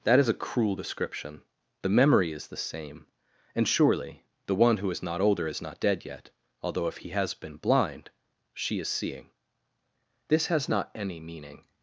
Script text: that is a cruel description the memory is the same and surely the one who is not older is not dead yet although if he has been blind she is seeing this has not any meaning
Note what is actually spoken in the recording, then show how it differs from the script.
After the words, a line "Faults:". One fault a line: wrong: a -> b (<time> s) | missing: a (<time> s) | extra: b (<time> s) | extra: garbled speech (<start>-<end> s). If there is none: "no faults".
that is a cruel description the memory is the same and surely the one who is not older is not dead yet although if he has been blind she is seeing this has not any meaning
Faults:
no faults